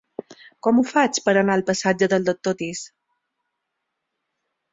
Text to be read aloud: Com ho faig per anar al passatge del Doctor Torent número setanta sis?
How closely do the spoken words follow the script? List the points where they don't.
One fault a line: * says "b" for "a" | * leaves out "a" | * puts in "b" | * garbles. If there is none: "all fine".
* leaves out "Torent número setanta"